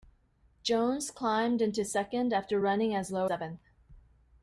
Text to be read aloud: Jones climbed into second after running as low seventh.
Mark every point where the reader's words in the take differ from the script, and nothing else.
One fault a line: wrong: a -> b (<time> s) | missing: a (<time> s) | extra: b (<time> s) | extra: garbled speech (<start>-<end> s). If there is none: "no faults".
no faults